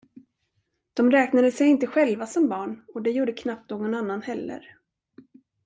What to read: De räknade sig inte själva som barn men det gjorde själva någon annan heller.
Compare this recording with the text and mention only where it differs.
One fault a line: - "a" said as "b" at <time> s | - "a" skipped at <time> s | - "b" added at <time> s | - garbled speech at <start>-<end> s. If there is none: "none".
- "men" said as "och" at 2.9 s
- "själva" said as "knappt" at 3.3 s